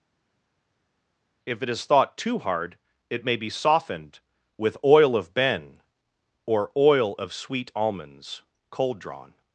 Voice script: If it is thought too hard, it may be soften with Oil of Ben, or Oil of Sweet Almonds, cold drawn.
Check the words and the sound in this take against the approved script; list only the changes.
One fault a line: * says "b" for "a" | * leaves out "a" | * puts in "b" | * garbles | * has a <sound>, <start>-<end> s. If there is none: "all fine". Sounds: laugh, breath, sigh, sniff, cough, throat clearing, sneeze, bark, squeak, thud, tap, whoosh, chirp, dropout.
* says "softened" for "soften"